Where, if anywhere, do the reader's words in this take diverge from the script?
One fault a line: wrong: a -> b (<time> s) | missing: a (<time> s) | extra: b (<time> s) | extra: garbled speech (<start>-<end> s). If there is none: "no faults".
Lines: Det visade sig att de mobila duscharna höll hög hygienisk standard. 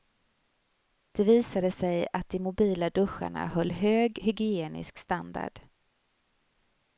no faults